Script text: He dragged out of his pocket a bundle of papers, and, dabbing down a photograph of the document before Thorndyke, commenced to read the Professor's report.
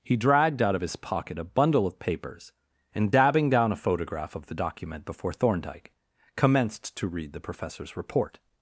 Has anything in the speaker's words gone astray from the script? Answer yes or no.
no